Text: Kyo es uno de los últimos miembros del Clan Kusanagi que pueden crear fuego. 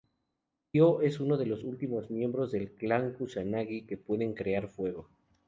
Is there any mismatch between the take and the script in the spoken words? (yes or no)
no